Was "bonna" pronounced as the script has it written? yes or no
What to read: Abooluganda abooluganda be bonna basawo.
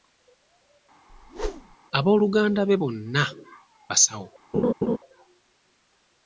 yes